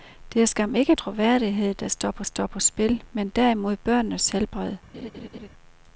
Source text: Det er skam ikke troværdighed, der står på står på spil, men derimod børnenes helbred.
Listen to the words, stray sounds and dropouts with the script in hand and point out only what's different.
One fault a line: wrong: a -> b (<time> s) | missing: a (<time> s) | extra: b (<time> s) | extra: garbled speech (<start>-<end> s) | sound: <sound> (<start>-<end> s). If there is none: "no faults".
sound: laugh (4.9-5.5 s)